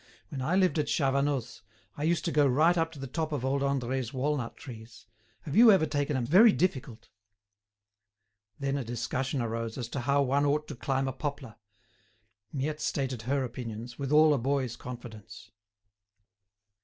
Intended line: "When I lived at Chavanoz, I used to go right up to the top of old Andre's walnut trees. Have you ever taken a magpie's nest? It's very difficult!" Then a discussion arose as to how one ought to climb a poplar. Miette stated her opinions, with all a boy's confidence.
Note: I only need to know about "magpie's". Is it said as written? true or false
false